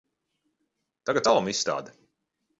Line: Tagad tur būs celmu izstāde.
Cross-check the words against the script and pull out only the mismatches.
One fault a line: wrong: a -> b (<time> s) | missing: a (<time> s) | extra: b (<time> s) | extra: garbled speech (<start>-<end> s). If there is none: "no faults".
missing: tur būs (1.3 s)